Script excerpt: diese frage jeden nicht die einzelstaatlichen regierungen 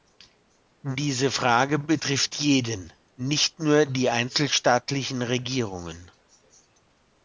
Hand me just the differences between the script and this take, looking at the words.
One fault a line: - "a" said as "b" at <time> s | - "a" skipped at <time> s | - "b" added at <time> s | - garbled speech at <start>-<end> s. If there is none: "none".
- "betrifft" added at 1.8 s
- "nur" added at 3.6 s